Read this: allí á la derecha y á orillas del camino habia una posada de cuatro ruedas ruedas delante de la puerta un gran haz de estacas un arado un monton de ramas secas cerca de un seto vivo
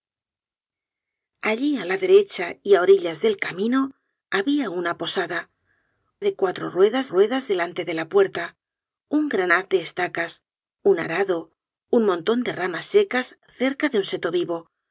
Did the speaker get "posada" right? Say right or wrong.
right